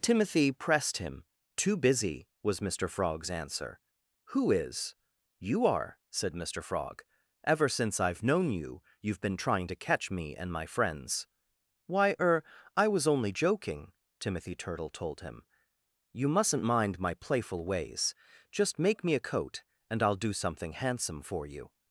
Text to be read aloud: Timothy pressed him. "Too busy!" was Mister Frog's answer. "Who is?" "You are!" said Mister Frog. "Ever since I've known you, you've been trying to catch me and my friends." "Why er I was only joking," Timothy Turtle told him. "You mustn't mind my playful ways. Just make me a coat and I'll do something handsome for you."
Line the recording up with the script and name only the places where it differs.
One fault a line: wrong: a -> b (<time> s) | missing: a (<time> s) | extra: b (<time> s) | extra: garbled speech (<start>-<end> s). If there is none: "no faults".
no faults